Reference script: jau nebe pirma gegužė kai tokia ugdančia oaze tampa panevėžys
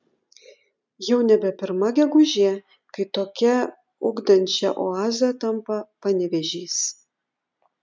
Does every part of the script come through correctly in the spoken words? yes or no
yes